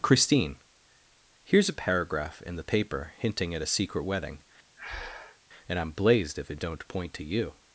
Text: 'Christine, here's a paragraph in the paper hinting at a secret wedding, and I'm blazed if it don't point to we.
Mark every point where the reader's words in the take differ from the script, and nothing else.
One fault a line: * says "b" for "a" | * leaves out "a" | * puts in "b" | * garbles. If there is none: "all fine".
* says "you" for "we"